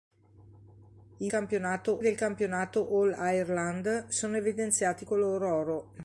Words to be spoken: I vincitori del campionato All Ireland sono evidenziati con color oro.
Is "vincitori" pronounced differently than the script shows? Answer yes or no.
yes